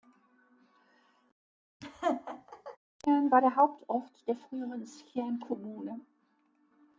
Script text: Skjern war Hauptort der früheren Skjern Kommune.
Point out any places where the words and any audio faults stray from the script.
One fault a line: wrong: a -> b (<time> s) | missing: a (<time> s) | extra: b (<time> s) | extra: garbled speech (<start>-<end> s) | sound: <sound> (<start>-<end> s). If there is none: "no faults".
sound: laugh (1.8-2.8 s)
extra: der (3.4 s)